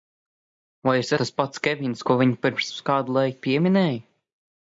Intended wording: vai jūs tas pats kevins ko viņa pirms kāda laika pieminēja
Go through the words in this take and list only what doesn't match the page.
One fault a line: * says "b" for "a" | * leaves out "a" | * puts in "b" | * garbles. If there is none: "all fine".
all fine